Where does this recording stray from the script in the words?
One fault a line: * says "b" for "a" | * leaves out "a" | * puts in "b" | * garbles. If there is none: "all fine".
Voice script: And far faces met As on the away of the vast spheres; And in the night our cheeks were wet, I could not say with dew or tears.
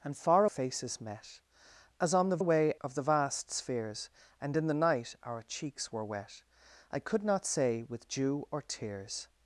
all fine